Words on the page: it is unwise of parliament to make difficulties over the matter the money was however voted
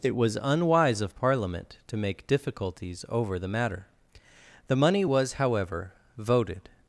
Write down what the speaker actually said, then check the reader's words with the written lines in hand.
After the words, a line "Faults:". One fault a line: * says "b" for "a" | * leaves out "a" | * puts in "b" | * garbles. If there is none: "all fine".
it was unwise of parliament to make difficulties over the matter the money was however voted
Faults:
* says "was" for "is"